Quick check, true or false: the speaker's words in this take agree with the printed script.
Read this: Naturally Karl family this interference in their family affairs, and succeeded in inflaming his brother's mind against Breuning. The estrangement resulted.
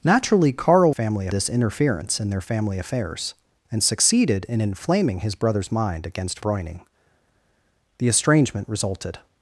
true